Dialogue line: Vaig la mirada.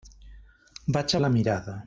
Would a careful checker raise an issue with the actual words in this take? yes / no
no